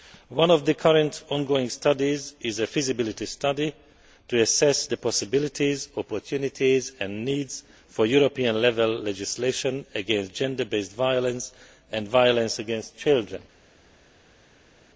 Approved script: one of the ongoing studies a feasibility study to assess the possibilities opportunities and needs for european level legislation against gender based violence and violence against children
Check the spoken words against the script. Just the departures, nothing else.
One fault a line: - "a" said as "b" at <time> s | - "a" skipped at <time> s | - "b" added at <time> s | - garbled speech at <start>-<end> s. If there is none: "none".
- "current" added at 0.7 s
- "is" added at 2.4 s